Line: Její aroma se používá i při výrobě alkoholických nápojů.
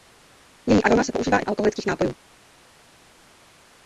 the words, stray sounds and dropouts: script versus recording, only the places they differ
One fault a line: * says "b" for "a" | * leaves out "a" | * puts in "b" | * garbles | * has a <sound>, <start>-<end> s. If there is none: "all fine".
* leaves out "při výrobě"